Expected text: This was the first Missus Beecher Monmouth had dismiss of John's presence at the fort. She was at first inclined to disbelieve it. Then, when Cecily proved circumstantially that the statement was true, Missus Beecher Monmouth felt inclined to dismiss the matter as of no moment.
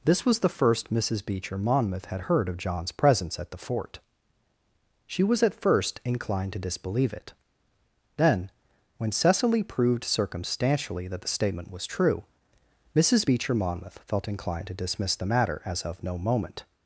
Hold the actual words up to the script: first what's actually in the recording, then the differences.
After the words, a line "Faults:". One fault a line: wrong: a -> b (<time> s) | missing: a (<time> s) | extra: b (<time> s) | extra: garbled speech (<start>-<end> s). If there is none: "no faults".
This was the first Missus Beecher Monmouth had heard of John's presence at the fort. She was at first inclined to disbelieve it. Then, when Cecily proved circumstantially that the statement was true, Missus Beecher Monmouth felt inclined to dismiss the matter as of no moment.
Faults:
wrong: dismiss -> heard (2.2 s)